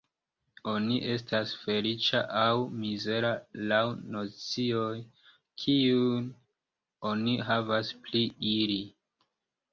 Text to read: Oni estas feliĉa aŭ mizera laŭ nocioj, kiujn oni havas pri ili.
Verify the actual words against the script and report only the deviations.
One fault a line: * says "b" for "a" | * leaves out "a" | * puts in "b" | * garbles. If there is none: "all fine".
all fine